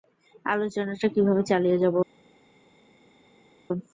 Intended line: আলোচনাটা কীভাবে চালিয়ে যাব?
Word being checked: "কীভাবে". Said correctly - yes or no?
yes